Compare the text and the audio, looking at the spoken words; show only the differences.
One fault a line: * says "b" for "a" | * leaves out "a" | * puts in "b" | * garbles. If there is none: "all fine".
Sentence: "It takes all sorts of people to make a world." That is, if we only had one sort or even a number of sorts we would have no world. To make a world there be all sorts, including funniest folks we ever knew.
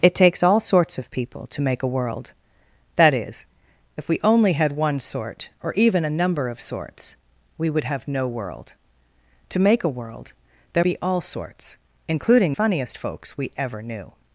all fine